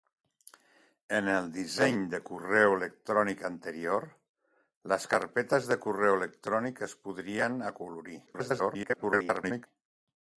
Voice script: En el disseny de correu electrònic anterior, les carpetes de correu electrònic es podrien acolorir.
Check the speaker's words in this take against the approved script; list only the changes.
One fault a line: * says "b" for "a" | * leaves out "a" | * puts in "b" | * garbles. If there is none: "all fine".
* garbles